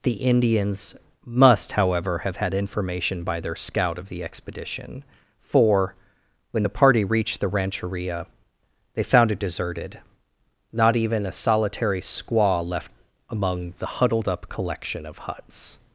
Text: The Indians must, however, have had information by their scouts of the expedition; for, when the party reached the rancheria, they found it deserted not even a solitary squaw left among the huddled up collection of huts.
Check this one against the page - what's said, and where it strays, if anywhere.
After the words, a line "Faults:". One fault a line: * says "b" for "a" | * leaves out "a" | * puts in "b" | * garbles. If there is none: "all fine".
The Indians must, however, have had information by their scout of the expedition; for, when the party reached the rancheria, they found it deserted not even a solitary squaw left among the huddled up collection of huts.
Faults:
* says "scout" for "scouts"